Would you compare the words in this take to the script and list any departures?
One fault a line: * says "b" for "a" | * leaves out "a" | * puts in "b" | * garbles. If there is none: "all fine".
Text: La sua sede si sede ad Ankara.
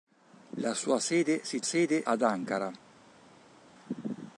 all fine